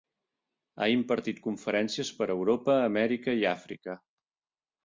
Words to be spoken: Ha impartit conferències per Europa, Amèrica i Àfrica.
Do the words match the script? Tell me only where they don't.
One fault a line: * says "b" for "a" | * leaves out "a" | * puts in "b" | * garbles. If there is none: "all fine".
all fine